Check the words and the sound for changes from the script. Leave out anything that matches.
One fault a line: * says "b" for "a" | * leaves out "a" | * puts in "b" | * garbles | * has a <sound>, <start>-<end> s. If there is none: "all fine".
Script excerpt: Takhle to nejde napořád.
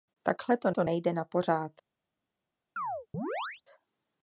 * puts in "to"
* has a chirp, 2.8-3.6 s